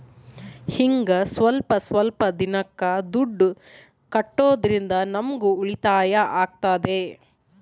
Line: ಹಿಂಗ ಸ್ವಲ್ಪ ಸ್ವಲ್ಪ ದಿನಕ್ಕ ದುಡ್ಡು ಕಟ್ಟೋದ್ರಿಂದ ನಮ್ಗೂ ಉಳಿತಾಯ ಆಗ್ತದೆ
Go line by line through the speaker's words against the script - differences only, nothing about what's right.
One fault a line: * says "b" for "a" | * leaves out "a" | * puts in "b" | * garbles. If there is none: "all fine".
all fine